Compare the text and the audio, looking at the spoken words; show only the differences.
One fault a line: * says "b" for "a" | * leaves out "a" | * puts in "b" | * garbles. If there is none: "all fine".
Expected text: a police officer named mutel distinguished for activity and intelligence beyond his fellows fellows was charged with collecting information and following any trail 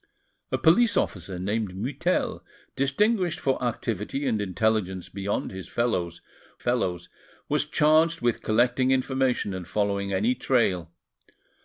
all fine